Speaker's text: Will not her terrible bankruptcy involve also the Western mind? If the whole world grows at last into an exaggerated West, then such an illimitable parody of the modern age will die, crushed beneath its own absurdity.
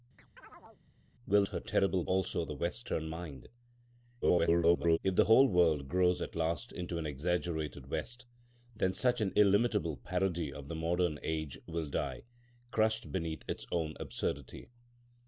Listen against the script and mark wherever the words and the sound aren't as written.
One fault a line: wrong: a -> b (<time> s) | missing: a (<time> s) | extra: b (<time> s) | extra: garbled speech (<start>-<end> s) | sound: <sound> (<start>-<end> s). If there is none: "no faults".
sound: chirp (0.2-0.8 s)
missing: not (1.4 s)
missing: bankruptcy involve (2.0 s)
extra: garbled speech (4.2-5.0 s)